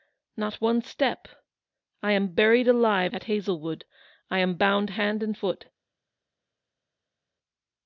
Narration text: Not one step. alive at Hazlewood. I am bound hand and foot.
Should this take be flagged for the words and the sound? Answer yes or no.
yes